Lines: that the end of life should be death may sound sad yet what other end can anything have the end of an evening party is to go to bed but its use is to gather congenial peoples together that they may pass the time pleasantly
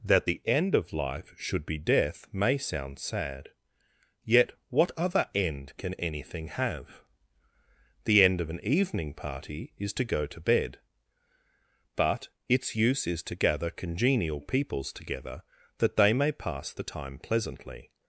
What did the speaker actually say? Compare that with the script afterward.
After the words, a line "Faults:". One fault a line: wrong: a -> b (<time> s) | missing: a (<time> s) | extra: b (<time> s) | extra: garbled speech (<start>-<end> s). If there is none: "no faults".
that the end of life should be death may sound sad yet what other end can anything have the end of an evening party is to go to bed but its use is to gather congenial peoples together that they may pass the time pleasantly
Faults:
no faults